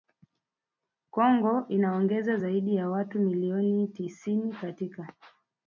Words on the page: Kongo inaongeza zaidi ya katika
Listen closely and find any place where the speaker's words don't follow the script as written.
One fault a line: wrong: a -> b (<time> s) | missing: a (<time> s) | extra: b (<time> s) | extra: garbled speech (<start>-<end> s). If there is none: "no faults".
extra: watu milioni tisini (2.9 s)